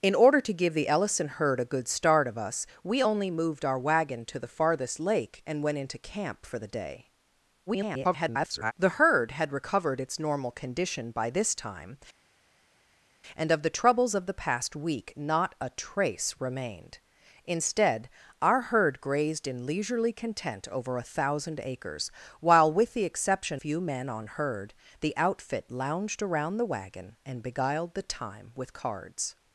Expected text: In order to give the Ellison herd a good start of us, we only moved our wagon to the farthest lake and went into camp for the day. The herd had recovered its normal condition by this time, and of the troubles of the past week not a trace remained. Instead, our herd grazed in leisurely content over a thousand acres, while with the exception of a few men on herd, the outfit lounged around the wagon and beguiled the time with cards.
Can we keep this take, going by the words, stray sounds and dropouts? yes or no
no